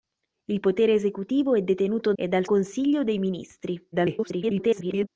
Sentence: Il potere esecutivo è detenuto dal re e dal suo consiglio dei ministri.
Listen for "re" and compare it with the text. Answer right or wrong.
wrong